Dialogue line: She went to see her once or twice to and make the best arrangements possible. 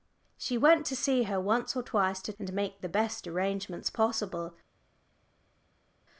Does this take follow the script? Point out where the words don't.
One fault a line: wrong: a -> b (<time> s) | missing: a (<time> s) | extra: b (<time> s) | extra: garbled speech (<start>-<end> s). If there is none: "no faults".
no faults